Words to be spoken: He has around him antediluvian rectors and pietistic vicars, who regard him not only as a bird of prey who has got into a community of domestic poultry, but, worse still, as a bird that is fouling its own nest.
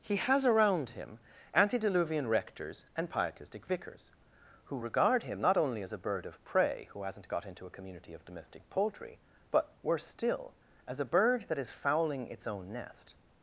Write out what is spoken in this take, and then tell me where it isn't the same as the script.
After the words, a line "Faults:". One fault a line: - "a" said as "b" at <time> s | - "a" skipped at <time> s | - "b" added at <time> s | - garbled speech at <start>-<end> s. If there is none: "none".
He has around him antediluvian rectors and pietistic vicars, who regard him not only as a bird of prey who hasn't got into a community of domestic poultry, but, worse still, as a bird that is fouling its own nest.
Faults:
- "has" said as "hasn't" at 7.0 s